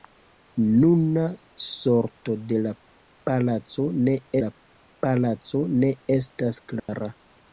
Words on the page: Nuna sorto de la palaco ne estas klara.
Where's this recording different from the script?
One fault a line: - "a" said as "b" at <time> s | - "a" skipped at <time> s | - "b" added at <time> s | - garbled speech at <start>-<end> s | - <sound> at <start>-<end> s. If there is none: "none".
- "la palaco ne" added at 4.4 s
- dropout at 6.8-6.9 s